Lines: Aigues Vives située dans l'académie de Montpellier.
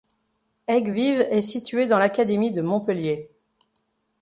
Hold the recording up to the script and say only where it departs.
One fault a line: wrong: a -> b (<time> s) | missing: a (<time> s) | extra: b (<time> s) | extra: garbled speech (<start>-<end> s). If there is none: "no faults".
extra: est (1.3 s)